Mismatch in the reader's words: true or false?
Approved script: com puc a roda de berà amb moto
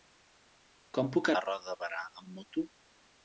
false